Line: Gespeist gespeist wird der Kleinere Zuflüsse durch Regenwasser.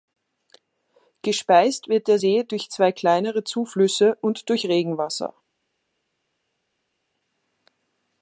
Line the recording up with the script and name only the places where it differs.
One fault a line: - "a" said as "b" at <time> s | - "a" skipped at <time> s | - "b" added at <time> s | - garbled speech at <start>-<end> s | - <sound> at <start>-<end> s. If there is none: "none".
- "gespeist" skipped at 1.9 s
- "See durch zwei" added at 2.1 s
- "und" added at 4.2 s